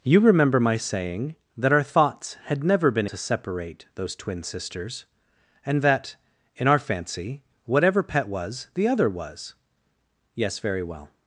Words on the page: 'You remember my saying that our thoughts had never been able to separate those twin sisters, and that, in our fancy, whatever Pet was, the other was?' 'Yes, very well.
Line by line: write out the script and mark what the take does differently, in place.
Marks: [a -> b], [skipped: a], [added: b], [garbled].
'You remember my saying that our thoughts had never been [skipped: able] to separate those twin sisters, and that, in our fancy, whatever Pet was, the other was?' 'Yes, very well.